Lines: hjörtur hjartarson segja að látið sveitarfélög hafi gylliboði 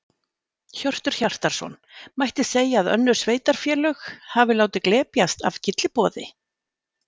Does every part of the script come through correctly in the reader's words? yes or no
no